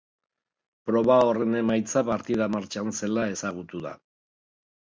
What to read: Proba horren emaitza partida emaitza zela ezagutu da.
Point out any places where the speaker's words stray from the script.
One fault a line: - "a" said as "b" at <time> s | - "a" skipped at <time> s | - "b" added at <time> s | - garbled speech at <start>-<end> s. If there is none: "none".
- "emaitza" said as "martxan" at 2.5 s